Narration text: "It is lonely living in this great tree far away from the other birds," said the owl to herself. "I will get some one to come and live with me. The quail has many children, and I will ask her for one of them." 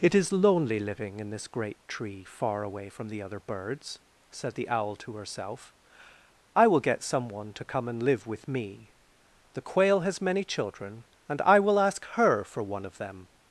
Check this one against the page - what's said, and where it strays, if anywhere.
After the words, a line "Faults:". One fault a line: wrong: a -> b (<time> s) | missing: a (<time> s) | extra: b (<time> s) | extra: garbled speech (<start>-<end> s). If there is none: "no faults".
"It is lonely living in this great tree far away from the other birds," said the owl to herself. "I will get some one to come and live with me. The quail has many children, and I will ask her for one of them."
Faults:
no faults